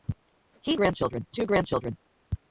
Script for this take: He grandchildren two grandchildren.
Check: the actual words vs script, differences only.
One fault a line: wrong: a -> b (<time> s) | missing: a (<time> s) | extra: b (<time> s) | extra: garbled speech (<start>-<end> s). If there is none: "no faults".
no faults